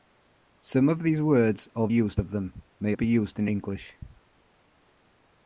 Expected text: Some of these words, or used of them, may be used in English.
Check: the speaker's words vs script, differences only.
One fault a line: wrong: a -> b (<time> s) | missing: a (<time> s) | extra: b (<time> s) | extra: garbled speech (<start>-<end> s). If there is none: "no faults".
no faults